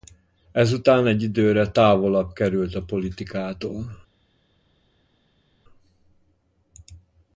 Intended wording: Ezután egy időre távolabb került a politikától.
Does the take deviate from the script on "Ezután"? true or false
false